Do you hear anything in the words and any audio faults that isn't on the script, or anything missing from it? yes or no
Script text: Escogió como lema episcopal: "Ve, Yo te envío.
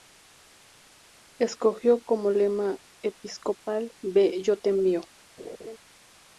yes